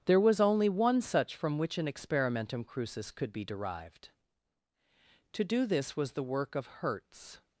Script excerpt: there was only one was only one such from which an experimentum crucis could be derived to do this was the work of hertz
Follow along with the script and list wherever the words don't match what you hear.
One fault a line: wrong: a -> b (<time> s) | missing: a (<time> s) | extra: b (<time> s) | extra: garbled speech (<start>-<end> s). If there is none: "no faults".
missing: was only one (1.0 s)